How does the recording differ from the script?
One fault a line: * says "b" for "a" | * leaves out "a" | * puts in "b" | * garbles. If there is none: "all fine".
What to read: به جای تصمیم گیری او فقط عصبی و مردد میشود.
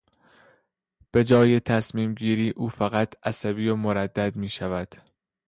all fine